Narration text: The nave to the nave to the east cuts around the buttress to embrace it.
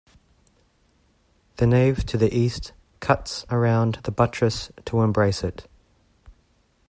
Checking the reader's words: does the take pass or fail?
fail